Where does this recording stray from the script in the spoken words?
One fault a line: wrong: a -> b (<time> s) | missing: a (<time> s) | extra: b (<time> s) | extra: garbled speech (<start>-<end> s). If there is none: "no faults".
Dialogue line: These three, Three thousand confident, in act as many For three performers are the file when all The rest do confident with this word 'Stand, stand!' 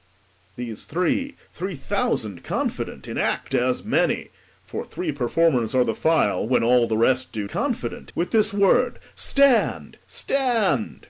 no faults